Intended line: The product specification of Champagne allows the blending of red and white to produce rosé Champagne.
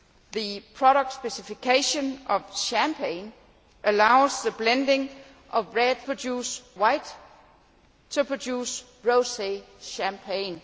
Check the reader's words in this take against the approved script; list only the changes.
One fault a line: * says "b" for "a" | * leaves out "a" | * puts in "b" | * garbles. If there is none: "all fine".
* says "produce" for "and"